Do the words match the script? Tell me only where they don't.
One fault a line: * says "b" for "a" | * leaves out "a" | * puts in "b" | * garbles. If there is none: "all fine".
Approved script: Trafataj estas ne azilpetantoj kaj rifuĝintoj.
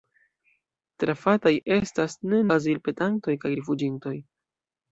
all fine